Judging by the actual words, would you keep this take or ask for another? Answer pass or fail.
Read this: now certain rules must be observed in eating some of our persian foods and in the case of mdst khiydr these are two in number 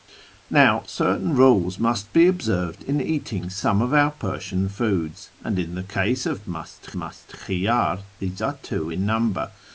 fail